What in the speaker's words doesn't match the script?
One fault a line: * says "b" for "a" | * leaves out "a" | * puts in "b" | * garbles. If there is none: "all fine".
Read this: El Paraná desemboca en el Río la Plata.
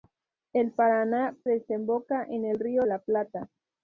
all fine